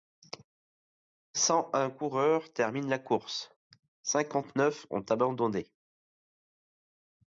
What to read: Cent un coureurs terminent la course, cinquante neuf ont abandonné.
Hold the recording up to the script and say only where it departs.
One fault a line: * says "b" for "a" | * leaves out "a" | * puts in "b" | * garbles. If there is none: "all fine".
all fine